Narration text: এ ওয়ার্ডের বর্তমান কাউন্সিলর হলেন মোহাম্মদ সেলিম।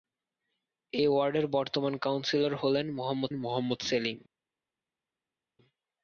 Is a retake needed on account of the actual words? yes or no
yes